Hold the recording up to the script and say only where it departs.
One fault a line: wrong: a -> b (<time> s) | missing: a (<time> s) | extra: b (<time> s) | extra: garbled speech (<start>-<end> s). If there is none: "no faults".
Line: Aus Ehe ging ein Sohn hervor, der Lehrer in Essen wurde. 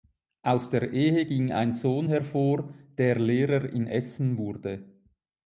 extra: der (0.7 s)